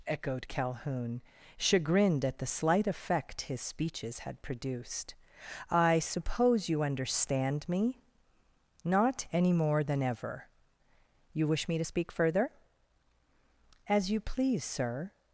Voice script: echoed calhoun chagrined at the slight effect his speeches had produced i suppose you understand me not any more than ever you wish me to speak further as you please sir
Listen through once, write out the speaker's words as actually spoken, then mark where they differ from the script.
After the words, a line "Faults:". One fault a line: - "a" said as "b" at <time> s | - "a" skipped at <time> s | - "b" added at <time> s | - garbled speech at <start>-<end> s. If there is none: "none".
echoed calhoun chagrined at the slight effect his speeches had produced i suppose you understand me not any more than ever you wish me to speak further as you please sir
Faults:
none